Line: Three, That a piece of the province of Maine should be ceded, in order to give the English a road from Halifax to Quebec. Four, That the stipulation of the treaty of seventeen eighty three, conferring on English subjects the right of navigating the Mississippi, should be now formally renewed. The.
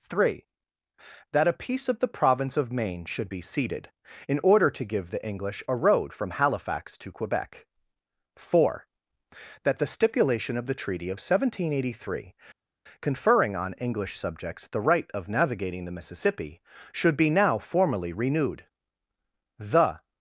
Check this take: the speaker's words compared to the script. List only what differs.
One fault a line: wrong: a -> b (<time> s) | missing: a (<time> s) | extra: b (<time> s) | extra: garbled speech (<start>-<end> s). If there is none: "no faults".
no faults